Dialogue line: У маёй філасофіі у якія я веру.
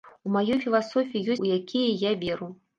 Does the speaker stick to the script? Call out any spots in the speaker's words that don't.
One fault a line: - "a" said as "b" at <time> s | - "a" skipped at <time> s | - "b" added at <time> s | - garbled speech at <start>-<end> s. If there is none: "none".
none